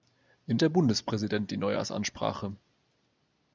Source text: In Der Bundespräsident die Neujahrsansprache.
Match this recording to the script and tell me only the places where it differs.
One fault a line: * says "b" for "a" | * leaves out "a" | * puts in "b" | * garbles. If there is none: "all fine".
all fine